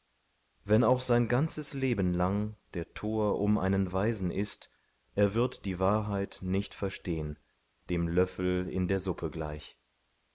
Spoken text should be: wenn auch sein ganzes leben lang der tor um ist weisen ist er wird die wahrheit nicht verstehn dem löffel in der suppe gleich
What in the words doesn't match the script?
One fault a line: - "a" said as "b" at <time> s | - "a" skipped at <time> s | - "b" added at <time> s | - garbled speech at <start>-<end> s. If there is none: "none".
- "ist" said as "einen" at 3.6 s